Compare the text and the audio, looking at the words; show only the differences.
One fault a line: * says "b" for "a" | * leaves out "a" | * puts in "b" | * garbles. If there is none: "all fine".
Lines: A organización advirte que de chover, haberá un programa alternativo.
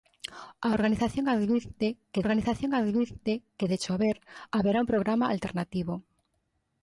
* puts in "organización advirte que"